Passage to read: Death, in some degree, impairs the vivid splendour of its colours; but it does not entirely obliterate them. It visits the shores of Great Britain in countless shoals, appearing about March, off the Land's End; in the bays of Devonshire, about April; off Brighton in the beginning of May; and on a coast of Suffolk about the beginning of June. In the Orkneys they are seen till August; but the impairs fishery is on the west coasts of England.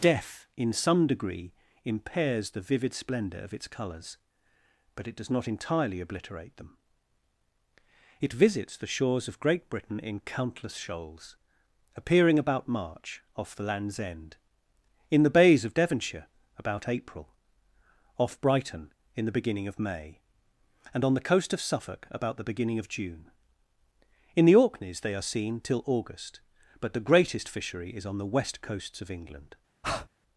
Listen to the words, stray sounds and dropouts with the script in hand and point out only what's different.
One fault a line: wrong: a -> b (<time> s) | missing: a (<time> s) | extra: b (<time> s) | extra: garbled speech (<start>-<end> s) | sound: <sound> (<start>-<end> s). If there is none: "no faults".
wrong: a -> the (21.1 s)
wrong: impairs -> greatest (27.1 s)
sound: breath (29.8-30.1 s)